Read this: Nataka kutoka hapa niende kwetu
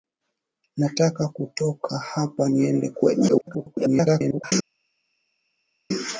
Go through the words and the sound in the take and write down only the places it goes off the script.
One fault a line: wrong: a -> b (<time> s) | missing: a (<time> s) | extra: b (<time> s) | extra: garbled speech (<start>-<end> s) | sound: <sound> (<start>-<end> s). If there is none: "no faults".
extra: garbled speech (3.3-4.5 s)